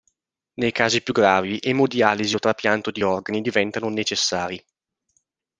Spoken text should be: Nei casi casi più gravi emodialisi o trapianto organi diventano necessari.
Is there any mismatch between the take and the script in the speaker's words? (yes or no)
yes